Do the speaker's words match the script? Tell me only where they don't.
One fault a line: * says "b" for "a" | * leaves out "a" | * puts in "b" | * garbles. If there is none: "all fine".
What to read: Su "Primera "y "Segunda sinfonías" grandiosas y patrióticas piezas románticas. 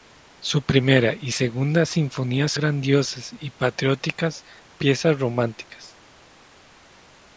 all fine